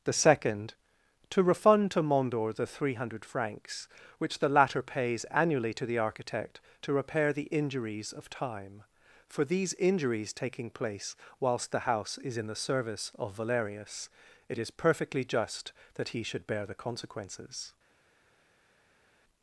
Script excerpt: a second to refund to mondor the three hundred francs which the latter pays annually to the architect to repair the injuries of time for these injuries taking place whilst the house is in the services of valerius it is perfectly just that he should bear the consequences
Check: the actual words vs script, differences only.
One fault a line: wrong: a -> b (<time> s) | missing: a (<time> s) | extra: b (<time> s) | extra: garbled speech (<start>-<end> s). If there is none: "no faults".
wrong: a -> the (0.0 s)
wrong: services -> service (12.6 s)